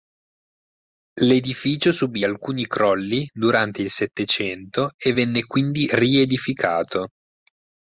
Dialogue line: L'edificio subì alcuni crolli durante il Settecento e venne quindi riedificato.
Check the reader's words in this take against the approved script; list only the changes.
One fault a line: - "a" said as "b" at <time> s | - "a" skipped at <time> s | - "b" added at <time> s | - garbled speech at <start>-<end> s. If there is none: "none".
none